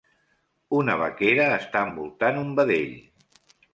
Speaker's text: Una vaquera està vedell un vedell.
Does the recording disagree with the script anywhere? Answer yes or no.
yes